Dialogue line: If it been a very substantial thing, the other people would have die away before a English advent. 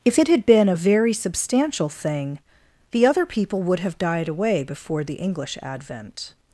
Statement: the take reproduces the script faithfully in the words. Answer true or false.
false